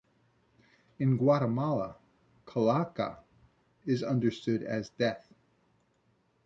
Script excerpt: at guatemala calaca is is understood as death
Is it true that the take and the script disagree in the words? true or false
true